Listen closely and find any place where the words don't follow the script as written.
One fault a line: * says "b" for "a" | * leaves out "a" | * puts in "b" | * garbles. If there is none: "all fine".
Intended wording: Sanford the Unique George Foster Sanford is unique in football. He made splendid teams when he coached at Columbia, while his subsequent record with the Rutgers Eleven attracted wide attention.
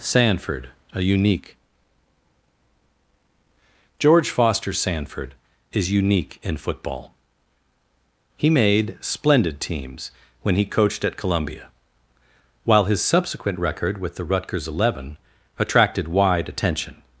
* says "a" for "the"